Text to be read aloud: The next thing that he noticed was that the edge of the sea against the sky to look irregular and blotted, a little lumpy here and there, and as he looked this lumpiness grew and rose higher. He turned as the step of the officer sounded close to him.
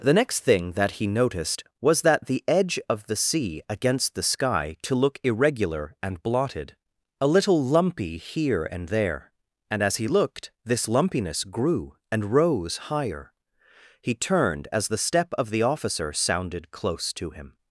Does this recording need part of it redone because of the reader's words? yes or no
no